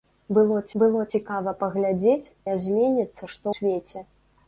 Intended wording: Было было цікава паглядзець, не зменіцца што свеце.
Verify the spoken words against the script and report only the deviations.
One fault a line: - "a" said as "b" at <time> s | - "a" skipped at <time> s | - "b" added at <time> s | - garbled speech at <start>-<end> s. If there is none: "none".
none